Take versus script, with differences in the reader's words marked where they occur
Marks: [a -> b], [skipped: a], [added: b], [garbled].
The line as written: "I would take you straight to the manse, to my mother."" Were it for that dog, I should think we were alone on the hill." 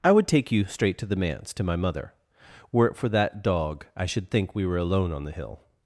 "I would take you straight to the manse, to my mother."" Were it for that dog, I should think we were alone on the hill."